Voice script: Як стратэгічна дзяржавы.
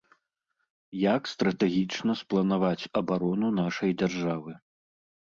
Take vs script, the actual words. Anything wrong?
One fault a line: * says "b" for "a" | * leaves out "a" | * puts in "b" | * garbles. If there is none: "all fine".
* puts in "спланаваць абарону нашай"